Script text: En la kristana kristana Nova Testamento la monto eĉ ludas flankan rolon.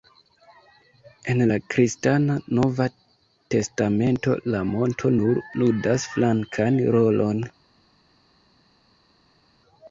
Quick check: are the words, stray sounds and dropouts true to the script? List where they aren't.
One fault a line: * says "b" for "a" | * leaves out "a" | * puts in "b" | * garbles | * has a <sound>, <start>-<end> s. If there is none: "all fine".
* leaves out "kristana"
* says "nur" for "eĉ"